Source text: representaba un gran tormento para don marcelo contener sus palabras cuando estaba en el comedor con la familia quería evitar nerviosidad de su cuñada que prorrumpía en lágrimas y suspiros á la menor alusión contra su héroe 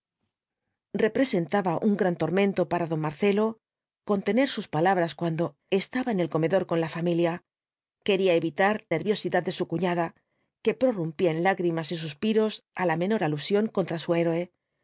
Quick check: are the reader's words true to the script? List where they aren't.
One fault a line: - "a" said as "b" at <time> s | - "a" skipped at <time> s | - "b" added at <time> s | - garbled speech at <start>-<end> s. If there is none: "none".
none